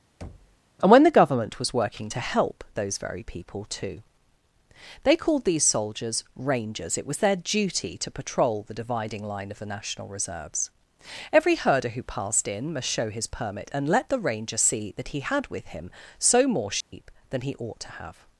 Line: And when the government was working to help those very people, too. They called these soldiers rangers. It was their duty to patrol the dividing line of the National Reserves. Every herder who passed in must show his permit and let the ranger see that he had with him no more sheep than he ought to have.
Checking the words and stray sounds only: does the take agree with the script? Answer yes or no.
no